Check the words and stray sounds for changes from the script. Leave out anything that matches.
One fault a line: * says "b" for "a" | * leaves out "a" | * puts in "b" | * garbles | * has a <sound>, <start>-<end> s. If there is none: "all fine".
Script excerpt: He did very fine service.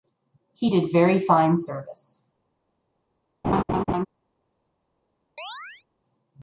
* has a laugh, 3.4-4.1 s
* has a chirp, 5.4-5.8 s